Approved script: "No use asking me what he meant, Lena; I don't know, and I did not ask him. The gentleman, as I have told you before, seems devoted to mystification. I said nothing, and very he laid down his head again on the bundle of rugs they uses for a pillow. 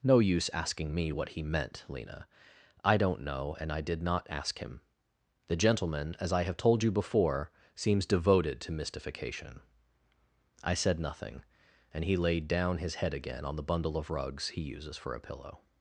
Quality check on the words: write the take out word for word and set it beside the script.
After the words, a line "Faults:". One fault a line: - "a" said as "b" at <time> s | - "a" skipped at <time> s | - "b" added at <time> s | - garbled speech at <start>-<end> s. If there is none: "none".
"No use asking me what he meant, Lena; I don't know, and I did not ask him. The gentleman, as I have told you before, seems devoted to mystification. I said nothing, and he laid down his head again on the bundle of rugs he uses for a pillow.
Faults:
- "very" skipped at 12.0 s
- "they" said as "he" at 14.5 s